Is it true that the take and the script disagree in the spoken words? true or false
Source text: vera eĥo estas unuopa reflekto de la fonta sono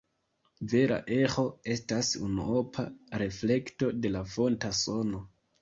false